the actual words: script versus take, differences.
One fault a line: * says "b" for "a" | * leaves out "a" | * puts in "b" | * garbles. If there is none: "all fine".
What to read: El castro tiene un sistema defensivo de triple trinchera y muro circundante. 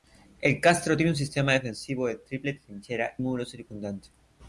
* leaves out "y"